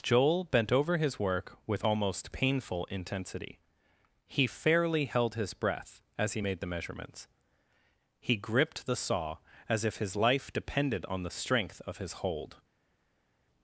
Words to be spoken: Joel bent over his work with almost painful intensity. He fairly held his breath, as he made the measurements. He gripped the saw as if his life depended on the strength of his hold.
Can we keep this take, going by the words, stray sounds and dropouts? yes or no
yes